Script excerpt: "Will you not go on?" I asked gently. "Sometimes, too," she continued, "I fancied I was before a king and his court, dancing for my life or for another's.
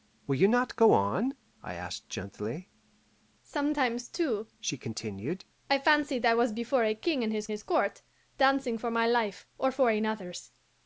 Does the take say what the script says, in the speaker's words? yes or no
no